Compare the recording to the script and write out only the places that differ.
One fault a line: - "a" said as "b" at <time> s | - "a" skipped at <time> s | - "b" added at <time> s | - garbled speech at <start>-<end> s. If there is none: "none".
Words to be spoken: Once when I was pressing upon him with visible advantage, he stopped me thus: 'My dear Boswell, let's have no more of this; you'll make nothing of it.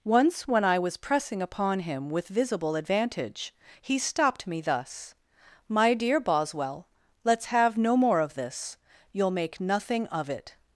none